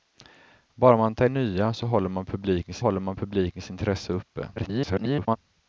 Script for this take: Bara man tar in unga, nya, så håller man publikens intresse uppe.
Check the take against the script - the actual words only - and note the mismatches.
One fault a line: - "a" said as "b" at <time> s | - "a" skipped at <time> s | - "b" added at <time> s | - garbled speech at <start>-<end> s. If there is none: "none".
- "in unga nya så" said as "nya så håller man publikens" at 1.2 s
- garbled speech at 4.6-5.4 s